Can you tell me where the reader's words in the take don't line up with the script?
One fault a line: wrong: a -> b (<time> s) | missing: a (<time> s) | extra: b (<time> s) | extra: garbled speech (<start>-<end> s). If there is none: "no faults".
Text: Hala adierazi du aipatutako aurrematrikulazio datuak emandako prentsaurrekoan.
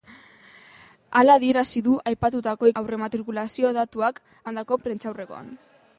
no faults